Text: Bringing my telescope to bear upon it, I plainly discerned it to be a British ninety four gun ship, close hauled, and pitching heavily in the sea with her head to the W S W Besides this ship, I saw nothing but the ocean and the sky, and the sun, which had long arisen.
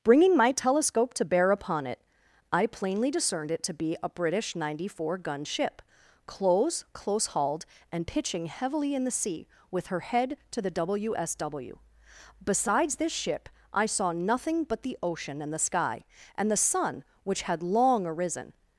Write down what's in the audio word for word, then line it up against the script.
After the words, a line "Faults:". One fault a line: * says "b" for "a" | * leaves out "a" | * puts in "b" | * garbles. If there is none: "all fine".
Bringing my telescope to bear upon it, I plainly discerned it to be a British ninety four gun ship, close close hauled, and pitching heavily in the sea with her head to the W S W Besides this ship, I saw nothing but the ocean and the sky, and the sun, which had long arisen.
Faults:
* puts in "close"